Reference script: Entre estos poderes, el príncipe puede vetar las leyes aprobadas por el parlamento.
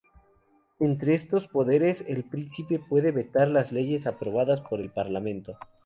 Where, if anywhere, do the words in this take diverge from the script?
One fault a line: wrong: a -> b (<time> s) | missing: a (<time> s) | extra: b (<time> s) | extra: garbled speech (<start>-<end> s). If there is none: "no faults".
no faults